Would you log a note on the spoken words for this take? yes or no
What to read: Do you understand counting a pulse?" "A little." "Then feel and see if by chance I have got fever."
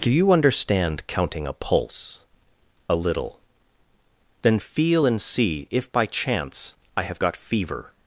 no